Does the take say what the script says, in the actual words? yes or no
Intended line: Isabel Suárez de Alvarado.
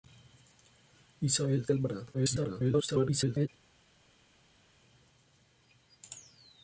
no